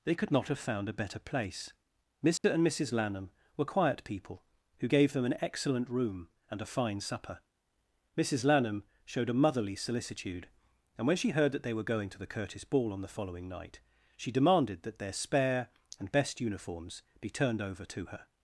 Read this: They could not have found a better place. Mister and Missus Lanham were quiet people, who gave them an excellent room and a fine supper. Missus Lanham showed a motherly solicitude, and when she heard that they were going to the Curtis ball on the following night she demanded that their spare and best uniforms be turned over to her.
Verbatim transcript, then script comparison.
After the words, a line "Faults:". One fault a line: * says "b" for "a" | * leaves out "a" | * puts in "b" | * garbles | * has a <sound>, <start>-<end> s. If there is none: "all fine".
They could not have found a better place. Mister and Missus Lanham were quiet people, who gave them an excellent room and a fine supper. Missus Lanham showed a motherly solicitude, and when she heard that they were going to the Curtis ball on the following night she demanded that their spare and best uniforms be turned over to her.
Faults:
* has a dropout, 2.4-2.4 s